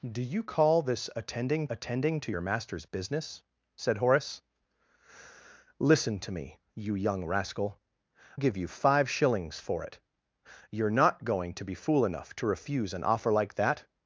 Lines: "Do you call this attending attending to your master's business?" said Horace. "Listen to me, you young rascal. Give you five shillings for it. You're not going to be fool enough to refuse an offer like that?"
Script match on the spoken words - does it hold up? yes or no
yes